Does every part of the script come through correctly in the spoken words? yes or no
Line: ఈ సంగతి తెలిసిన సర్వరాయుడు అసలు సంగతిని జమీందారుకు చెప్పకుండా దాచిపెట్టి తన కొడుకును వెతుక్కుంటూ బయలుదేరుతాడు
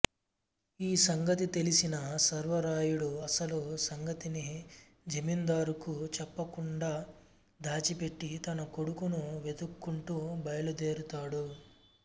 yes